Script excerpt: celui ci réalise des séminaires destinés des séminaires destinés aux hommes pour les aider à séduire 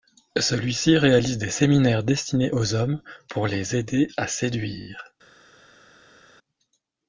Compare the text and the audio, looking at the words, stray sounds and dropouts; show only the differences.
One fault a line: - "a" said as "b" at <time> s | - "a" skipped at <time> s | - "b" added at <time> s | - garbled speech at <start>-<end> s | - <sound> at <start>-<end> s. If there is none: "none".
- "des séminaires destinés" skipped at 2.5 s